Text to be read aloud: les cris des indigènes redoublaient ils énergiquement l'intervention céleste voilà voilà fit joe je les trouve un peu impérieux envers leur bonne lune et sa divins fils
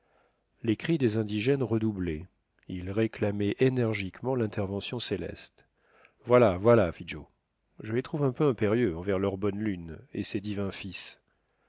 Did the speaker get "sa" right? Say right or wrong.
wrong